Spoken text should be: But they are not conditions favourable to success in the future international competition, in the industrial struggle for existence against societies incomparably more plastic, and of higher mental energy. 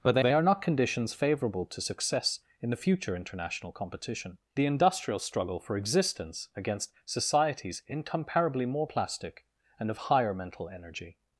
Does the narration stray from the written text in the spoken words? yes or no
yes